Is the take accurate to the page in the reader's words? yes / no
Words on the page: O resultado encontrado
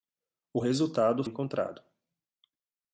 yes